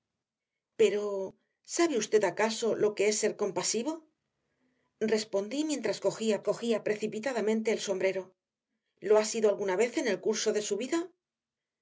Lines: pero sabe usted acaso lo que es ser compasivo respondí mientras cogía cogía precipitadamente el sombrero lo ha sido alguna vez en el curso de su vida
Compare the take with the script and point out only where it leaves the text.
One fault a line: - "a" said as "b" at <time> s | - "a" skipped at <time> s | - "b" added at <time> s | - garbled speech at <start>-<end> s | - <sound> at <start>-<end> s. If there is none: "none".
none